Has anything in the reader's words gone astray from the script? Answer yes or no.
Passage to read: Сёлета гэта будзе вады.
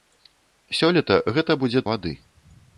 no